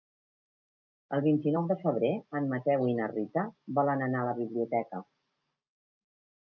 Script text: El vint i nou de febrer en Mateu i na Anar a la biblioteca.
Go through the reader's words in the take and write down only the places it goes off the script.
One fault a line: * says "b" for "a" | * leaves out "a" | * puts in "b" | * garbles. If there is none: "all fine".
* puts in "Rita volen"